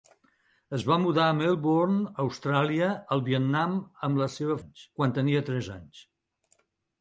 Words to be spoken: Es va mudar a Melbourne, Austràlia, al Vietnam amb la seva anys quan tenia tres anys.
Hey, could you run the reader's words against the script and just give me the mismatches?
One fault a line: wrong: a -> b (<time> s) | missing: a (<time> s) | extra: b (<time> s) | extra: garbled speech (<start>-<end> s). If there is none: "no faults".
no faults